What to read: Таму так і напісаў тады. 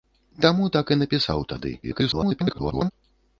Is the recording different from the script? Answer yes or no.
yes